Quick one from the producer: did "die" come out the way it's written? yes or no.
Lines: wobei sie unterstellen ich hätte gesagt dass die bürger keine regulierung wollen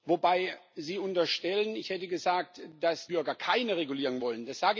no